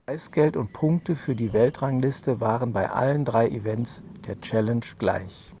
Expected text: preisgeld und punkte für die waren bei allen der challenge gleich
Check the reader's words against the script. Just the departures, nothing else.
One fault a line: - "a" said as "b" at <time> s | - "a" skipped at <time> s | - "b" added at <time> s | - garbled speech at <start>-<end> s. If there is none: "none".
- "weltrangliste" added at 1.5 s
- "drei events" added at 3.2 s